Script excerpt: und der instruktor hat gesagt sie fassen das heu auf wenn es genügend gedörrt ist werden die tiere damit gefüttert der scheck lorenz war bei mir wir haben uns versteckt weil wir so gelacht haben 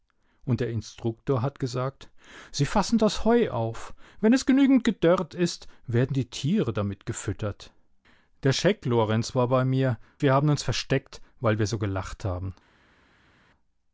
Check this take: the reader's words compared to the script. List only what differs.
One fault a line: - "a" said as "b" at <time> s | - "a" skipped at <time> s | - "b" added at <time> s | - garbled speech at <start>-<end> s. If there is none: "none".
none